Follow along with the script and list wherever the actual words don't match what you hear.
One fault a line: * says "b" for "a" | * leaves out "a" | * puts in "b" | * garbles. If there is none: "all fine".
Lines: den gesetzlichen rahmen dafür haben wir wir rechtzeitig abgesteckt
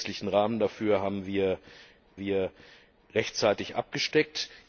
all fine